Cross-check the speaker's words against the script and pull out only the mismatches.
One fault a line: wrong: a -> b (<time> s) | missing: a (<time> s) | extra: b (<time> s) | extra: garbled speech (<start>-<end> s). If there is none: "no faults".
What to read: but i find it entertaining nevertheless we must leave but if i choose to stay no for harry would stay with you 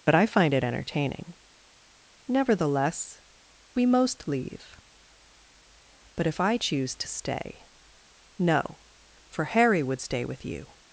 wrong: must -> most (3.9 s)